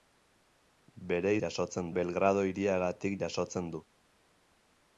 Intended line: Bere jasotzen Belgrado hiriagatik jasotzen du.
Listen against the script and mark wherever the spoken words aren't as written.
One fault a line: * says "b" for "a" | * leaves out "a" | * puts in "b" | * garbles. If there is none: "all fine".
all fine